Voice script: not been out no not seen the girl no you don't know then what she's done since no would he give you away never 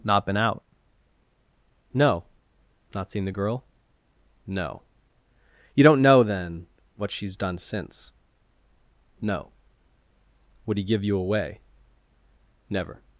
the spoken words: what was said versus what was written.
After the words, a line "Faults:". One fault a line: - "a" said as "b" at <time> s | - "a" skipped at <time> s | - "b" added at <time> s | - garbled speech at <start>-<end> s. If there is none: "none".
not been out no not seen the girl no you don't know then what she's done since no would he give you away never
Faults:
none